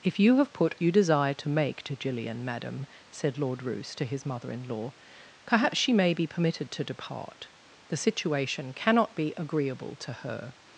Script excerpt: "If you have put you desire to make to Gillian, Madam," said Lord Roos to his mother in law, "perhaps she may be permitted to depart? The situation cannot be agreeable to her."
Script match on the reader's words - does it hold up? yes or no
yes